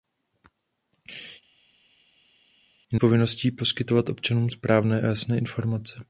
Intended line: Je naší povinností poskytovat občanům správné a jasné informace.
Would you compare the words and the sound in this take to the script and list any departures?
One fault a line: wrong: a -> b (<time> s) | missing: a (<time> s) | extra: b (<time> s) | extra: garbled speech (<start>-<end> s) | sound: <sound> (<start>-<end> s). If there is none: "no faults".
missing: naší (3.0 s)